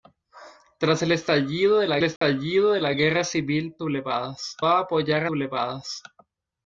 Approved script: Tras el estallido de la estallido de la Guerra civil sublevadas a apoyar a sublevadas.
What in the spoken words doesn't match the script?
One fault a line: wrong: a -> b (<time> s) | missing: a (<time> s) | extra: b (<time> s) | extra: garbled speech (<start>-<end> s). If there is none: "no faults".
no faults